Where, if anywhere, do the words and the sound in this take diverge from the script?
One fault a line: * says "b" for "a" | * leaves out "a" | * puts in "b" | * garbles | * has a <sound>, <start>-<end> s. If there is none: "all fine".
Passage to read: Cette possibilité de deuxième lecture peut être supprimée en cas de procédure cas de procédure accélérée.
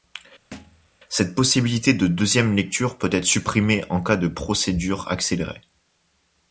* has a thud, 0.5-0.9 s
* leaves out "cas de procédure"